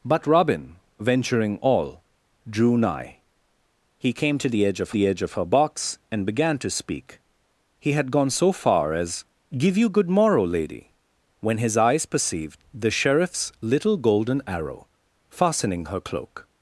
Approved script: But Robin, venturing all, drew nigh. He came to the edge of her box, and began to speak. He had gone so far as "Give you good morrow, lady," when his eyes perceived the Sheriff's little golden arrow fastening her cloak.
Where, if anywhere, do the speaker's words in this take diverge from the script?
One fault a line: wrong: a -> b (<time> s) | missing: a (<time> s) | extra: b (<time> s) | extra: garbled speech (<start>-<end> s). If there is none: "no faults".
extra: the edge of (4.9 s)